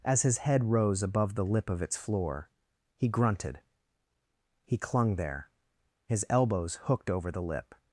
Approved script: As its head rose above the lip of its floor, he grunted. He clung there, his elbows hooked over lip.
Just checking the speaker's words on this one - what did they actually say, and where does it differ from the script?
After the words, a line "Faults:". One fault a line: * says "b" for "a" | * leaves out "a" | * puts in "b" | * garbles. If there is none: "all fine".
As his head rose above the lip of its floor, he grunted. He clung there, his elbows hooked over the lip.
Faults:
* says "his" for "its"
* puts in "the"